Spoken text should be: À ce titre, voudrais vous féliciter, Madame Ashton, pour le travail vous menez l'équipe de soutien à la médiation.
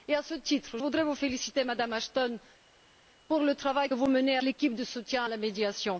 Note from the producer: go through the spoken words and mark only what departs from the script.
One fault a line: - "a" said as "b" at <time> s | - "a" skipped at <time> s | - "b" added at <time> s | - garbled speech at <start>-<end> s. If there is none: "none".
none